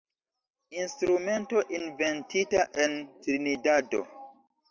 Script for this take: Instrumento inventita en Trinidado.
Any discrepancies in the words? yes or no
no